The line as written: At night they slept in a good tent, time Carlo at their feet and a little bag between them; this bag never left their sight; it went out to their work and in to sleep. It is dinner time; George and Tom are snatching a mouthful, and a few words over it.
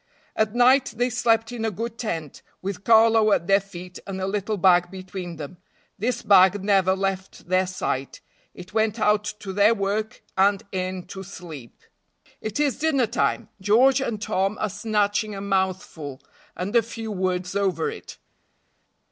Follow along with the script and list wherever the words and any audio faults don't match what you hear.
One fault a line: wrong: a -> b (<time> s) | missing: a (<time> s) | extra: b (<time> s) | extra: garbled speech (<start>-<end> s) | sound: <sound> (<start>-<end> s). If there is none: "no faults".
wrong: time -> with (2.6 s)